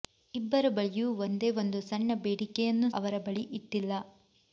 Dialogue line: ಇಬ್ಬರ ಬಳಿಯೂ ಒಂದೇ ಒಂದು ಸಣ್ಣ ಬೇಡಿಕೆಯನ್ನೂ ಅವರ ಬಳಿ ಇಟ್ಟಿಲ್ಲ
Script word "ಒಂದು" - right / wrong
right